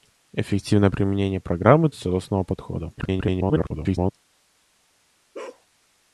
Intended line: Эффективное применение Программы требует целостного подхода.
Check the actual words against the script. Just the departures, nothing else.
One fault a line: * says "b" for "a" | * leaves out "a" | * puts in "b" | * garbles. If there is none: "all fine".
* leaves out "требует"
* garbles